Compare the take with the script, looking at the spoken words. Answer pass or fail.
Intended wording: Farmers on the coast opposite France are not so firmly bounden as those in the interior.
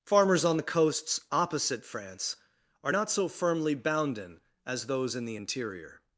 fail